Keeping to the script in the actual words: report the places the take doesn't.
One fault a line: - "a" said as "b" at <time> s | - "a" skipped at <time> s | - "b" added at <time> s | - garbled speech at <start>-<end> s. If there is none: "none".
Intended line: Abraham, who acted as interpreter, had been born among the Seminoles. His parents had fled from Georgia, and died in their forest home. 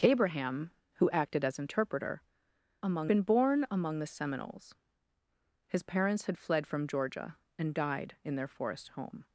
- "had" said as "among" at 2.8 s